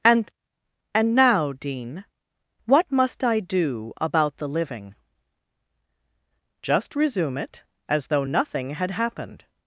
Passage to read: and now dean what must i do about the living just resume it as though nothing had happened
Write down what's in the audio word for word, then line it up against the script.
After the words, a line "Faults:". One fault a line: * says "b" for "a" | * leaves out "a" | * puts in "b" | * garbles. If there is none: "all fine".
and and now dean what must i do about the living just resume it as though nothing had happened
Faults:
* puts in "and"